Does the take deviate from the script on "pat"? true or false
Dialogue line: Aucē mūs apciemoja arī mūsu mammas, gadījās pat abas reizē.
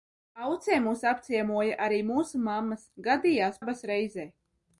true